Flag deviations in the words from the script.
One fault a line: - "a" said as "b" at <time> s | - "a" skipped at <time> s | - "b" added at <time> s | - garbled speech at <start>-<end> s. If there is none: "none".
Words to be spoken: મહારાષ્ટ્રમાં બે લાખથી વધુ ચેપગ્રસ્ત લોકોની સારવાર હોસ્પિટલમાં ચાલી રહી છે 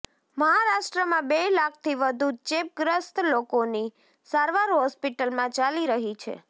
none